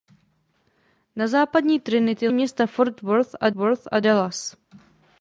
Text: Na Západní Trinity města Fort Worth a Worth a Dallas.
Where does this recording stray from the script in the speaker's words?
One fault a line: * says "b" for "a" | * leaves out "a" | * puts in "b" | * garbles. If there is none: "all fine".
all fine